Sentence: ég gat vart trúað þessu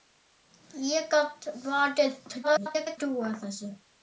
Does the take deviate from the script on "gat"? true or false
false